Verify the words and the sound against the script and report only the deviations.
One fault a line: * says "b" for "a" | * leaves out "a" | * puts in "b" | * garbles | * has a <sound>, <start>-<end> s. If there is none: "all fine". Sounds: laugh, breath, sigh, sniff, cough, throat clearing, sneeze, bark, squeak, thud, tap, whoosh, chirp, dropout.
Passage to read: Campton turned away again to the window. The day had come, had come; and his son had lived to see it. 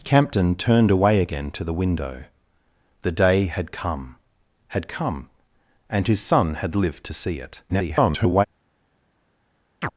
* garbles
* has a chirp, 9.8-9.9 s